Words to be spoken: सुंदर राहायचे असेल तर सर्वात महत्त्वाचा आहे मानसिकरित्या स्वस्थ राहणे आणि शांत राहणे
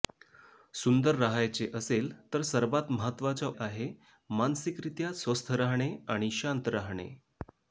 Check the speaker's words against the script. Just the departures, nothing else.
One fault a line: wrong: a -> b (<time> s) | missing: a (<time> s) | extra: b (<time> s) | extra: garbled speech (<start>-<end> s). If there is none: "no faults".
no faults